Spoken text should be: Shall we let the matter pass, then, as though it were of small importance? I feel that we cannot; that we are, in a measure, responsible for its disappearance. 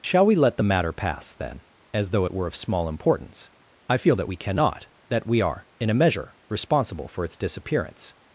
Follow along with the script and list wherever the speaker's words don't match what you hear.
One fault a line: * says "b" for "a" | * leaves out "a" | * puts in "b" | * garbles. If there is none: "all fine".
all fine